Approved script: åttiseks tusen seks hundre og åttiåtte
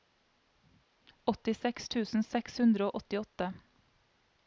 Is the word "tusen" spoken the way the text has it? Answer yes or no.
yes